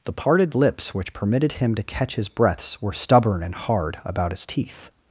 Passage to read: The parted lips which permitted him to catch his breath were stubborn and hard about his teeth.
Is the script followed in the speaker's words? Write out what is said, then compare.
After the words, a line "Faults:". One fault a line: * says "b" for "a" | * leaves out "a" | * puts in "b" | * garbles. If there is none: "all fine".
The parted lips which permitted him to catch his breaths were stubborn and hard about his teeth.
Faults:
* says "breaths" for "breath"